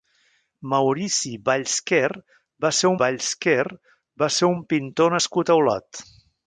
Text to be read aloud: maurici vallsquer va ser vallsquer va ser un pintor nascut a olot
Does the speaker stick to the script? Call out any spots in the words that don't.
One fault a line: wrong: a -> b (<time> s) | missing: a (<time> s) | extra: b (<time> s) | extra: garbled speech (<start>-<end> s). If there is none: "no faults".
no faults